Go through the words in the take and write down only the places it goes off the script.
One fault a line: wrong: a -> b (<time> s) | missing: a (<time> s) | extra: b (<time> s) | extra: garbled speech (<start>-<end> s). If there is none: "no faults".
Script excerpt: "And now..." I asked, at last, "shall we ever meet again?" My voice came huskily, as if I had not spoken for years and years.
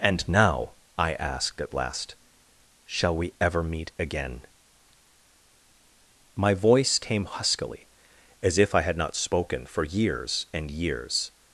no faults